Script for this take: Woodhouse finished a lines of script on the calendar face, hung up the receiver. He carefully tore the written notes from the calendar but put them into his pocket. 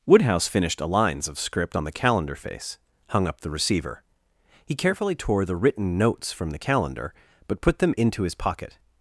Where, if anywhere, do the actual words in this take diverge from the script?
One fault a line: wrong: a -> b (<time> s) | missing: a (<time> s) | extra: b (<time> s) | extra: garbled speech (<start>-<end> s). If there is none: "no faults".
no faults